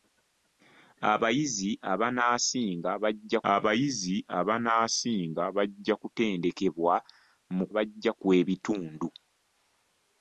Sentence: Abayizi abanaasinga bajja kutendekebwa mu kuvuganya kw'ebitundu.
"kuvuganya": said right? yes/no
no